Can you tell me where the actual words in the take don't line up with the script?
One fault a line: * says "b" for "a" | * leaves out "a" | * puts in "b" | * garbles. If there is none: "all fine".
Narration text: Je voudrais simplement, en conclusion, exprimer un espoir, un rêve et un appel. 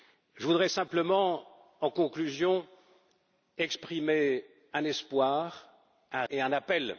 * leaves out "rêve"